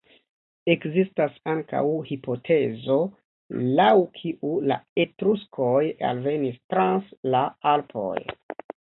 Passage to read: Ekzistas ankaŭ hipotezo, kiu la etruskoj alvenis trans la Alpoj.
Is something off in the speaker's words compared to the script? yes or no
yes